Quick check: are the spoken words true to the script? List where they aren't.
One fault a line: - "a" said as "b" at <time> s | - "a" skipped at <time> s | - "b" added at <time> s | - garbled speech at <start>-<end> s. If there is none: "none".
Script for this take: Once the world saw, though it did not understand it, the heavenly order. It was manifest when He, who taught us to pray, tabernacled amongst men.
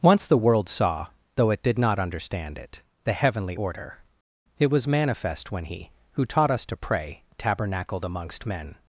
none